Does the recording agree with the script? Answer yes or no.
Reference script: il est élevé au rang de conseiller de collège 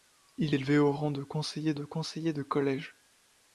no